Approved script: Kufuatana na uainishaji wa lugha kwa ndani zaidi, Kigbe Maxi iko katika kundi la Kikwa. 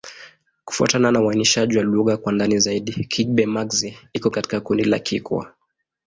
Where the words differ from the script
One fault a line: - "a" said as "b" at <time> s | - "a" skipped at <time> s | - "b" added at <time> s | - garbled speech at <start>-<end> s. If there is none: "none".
none